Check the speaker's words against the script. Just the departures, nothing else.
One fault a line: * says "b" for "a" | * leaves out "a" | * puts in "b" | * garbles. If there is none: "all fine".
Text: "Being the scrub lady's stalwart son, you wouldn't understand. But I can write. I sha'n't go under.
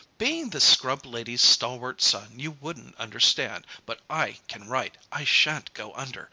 all fine